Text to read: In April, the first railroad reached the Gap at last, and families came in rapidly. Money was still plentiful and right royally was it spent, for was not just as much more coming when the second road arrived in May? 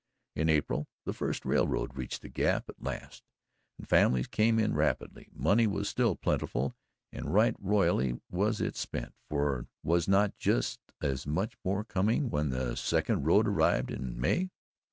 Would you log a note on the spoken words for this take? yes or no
no